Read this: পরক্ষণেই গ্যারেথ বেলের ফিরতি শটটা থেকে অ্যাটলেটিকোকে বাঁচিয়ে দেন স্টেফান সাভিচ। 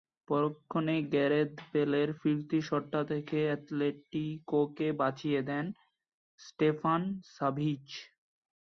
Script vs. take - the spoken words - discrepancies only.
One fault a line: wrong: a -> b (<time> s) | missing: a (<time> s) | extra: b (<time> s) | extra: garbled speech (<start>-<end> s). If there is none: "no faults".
no faults